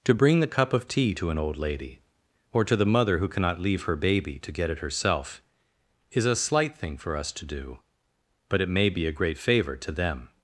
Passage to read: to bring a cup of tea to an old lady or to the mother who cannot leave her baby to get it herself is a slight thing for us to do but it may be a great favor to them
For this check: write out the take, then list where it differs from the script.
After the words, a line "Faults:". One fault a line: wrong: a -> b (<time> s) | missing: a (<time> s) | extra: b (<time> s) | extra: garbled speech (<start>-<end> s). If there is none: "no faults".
to bring the cup of tea to an old lady or to the mother who cannot leave her baby to get it herself is a slight thing for us to do but it may be a great favor to them
Faults:
wrong: a -> the (0.4 s)